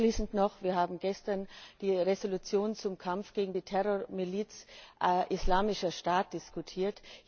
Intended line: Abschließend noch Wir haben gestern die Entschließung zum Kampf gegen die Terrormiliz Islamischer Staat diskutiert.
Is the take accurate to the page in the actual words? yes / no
yes